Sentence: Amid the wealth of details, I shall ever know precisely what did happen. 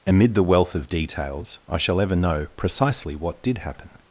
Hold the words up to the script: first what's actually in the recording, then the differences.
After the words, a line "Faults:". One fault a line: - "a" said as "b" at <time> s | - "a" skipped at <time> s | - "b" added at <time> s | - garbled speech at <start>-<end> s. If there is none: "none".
Amid the wealth of details, I shall ever know precisely what did happen.
Faults:
none